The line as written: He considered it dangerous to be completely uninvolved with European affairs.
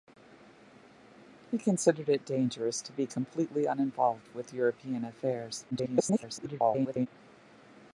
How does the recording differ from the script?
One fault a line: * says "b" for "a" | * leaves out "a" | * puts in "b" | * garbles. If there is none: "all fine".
* garbles